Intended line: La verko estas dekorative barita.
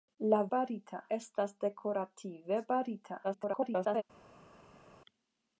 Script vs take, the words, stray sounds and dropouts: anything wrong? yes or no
yes